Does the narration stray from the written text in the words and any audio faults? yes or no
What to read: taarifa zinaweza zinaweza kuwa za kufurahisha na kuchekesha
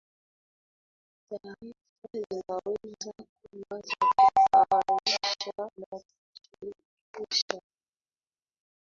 yes